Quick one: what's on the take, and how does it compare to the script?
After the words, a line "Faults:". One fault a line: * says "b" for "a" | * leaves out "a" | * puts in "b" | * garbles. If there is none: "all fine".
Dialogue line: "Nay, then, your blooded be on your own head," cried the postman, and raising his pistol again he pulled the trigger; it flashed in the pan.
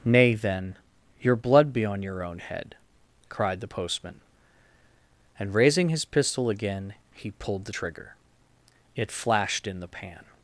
"Nay, then, your blood be on your own head," cried the postman, and raising his pistol again he pulled the trigger; it flashed in the pan.
Faults:
* says "blood" for "blooded"